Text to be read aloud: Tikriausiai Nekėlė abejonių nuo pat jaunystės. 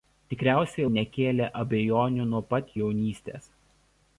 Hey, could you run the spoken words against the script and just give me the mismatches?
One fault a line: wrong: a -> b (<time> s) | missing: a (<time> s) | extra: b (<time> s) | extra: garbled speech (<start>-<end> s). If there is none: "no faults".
no faults